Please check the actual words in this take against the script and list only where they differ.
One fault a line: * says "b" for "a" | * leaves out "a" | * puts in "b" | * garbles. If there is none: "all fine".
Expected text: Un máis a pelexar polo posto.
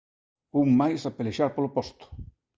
all fine